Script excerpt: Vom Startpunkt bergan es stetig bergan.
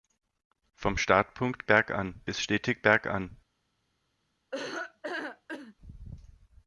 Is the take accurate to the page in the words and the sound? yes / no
no